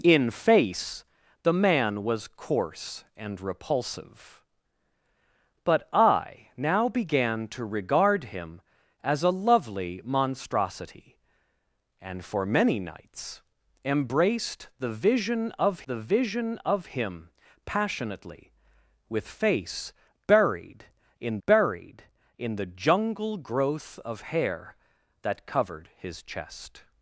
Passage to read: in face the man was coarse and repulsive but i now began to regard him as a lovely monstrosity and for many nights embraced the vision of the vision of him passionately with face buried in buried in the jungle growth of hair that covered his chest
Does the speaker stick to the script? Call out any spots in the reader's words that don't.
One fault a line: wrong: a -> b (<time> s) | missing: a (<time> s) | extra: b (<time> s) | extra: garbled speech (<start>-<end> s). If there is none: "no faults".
no faults